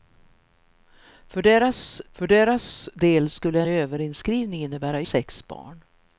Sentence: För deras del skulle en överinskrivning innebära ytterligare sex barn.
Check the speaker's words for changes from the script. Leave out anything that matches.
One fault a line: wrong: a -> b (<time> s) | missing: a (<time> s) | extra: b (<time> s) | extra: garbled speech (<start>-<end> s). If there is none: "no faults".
extra: för deras (2.1 s)
missing: en (3.6 s)
missing: ytterligare (5.0 s)